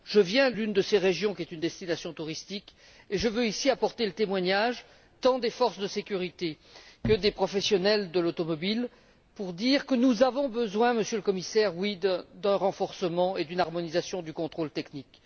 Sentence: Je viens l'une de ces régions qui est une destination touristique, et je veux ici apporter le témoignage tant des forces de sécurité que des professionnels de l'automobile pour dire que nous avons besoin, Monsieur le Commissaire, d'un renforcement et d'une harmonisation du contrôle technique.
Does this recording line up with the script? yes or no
yes